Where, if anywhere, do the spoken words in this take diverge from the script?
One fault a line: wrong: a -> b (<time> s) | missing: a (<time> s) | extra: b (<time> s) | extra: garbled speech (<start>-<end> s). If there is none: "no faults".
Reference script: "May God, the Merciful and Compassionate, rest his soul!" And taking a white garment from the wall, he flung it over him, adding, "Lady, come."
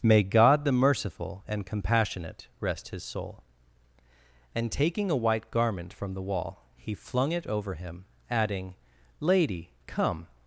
no faults